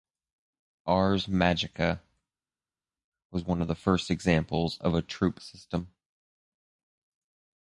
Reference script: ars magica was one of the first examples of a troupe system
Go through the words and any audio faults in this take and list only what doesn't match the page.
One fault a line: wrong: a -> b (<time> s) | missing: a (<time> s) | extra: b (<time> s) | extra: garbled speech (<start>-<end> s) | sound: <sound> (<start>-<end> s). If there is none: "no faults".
no faults